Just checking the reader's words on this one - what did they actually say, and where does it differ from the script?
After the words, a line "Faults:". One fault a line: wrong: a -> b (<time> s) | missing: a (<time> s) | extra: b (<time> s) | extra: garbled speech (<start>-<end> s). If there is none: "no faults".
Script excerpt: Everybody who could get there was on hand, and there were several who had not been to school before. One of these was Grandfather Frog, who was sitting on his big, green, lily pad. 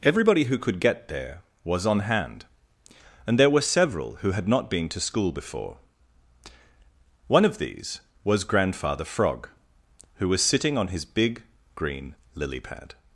Everybody who could get there was on hand, and there were several who had not been to school before. One of these was Grandfather Frog, who was sitting on his big, green, lily pad.
Faults:
no faults